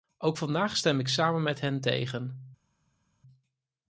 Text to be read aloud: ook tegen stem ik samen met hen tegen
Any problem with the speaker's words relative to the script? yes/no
yes